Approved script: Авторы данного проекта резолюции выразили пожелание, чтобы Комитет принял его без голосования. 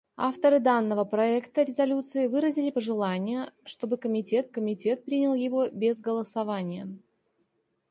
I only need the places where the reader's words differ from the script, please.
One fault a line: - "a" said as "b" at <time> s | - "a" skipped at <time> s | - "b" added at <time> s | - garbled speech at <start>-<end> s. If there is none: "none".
- "Комитет" added at 4.5 s